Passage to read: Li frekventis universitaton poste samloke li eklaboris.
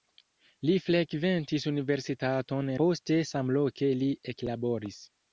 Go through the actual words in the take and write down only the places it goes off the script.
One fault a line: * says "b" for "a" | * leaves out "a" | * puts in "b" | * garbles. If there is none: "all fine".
all fine